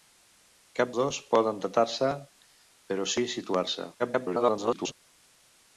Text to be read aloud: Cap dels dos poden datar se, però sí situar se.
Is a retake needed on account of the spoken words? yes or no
yes